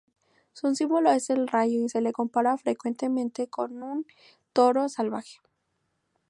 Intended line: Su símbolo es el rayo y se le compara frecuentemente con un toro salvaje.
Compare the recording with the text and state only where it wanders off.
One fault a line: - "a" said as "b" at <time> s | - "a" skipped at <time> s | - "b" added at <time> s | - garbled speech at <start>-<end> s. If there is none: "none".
none